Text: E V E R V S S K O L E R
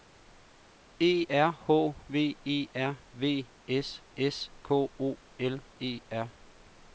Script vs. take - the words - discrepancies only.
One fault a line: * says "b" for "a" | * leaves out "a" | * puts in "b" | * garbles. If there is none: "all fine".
* puts in "R H"